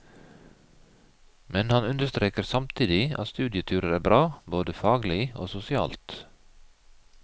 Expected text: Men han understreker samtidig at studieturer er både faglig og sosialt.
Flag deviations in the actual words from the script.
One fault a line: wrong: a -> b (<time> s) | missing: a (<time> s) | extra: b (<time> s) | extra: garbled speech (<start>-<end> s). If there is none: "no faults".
extra: bra (4.1 s)